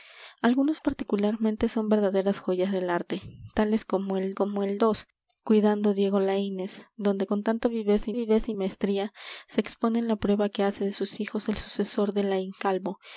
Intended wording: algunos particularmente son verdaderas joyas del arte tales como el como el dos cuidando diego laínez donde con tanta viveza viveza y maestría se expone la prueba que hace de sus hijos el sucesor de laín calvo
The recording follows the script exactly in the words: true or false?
true